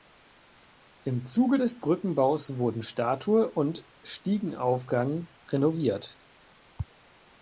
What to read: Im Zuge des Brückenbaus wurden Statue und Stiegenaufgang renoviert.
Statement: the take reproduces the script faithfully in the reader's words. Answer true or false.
true